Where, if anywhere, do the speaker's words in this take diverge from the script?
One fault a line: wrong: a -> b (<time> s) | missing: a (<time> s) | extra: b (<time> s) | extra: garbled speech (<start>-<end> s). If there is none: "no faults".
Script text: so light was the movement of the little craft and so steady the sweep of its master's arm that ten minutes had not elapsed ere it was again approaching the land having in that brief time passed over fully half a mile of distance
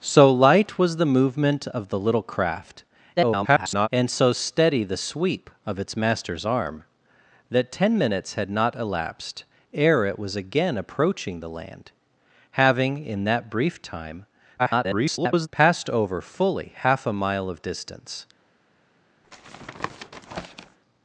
extra: garbled speech (3.2-3.9 s)
extra: garbled speech (14.6-15.5 s)